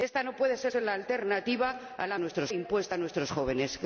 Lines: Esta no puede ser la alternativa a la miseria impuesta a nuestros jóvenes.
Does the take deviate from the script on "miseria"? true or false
true